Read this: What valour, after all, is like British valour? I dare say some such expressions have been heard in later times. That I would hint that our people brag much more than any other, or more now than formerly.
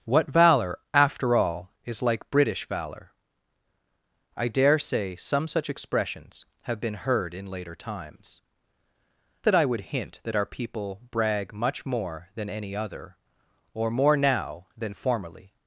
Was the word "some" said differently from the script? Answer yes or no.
no